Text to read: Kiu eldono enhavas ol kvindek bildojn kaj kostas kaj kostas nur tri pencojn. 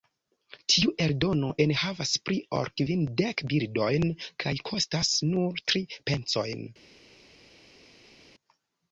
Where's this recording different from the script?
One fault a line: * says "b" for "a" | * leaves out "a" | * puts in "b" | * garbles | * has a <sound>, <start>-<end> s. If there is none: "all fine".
* says "Tiu" for "Kiu"
* puts in "pli"
* leaves out "kaj kostas"